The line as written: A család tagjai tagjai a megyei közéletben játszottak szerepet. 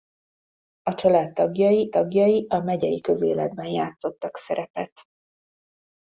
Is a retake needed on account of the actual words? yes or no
no